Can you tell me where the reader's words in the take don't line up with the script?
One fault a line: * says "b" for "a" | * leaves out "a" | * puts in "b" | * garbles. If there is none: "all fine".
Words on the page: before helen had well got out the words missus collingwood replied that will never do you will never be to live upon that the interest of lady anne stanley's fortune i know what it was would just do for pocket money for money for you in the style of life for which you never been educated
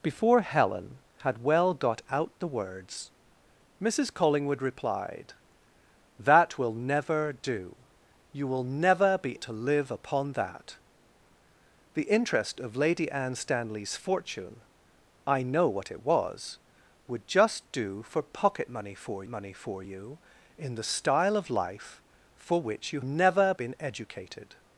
all fine